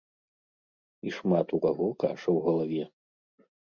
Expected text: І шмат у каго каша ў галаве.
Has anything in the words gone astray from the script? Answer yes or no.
no